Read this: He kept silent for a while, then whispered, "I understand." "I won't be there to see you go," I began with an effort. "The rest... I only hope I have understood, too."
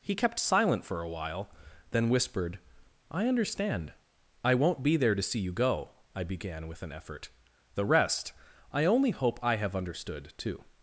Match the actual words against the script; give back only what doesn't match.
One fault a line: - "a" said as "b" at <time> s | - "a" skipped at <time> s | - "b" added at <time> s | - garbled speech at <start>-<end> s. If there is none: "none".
none